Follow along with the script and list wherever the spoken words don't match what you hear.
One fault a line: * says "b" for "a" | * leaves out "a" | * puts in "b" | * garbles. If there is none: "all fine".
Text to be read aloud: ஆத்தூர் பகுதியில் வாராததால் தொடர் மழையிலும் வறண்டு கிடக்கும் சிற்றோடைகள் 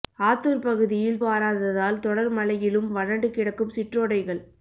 all fine